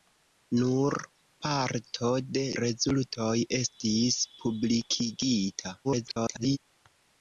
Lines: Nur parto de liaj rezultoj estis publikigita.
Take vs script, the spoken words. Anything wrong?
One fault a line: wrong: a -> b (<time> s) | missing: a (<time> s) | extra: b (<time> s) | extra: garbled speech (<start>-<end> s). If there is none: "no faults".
missing: liaj (2.4 s)
extra: garbled speech (5.8-6.6 s)